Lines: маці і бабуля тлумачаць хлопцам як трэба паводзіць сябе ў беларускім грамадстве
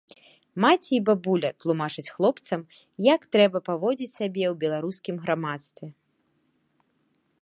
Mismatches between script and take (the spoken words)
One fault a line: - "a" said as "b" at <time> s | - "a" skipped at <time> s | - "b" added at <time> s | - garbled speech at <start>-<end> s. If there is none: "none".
none